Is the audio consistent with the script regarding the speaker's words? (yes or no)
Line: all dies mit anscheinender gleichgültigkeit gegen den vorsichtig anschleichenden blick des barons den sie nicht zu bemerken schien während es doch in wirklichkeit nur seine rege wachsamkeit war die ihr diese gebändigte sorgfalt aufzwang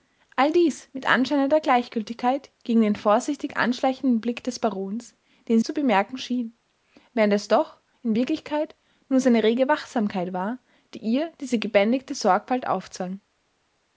no